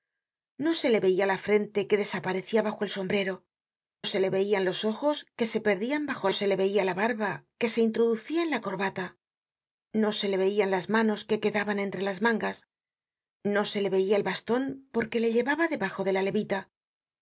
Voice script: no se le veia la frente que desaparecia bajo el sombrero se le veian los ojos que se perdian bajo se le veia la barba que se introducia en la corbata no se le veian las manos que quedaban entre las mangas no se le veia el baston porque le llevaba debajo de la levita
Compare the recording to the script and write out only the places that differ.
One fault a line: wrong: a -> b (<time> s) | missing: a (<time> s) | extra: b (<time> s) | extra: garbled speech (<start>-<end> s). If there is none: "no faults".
no faults